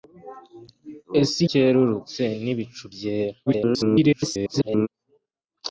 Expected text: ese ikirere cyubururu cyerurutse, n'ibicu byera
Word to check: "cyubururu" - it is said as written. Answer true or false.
false